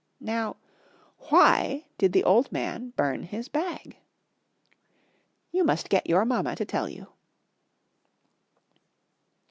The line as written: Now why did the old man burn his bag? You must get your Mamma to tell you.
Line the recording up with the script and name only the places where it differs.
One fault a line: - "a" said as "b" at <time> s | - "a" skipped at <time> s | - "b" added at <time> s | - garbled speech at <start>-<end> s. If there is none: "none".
none